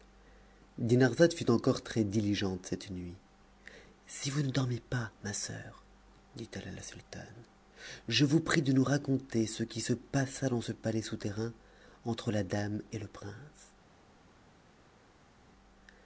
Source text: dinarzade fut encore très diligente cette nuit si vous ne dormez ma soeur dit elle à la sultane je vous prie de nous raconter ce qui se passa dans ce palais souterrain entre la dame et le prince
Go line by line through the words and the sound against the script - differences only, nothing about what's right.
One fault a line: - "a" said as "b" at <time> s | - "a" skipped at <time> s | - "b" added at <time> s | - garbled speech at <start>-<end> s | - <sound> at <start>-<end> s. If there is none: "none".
- "pas" added at 4.8 s